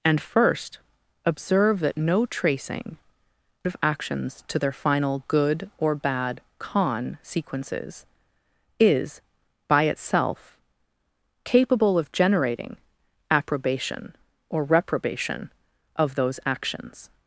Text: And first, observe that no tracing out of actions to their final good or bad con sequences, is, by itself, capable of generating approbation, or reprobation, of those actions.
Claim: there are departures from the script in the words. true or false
true